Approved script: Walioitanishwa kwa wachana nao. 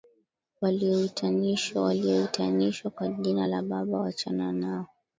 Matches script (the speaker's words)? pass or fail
fail